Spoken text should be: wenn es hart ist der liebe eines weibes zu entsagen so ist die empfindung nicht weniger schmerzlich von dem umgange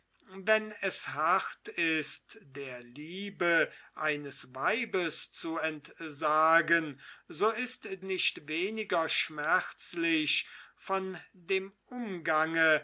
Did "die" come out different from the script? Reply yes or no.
yes